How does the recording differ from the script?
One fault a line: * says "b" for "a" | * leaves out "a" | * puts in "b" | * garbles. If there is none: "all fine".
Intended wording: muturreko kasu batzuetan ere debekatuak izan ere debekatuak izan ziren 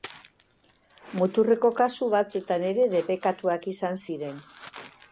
* leaves out "ere debekatuak izan"